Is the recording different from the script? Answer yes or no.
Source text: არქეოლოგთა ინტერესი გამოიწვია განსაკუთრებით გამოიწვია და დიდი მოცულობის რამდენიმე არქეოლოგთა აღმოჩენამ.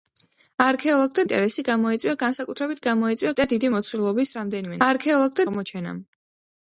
no